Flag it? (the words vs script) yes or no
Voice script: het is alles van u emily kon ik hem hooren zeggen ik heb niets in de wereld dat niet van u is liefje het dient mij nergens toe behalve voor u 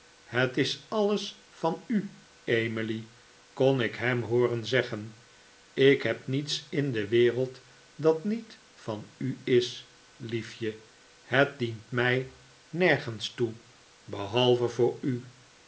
no